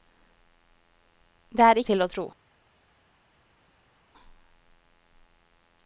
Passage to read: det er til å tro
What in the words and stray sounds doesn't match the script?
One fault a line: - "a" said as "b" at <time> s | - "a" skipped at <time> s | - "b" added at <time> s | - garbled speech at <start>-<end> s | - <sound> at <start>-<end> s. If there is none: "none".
none